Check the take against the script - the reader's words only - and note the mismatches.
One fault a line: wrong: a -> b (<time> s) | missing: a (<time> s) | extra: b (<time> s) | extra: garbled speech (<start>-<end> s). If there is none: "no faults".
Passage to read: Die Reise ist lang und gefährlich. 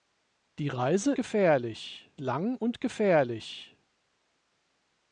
wrong: ist -> gefährlich (1.1 s)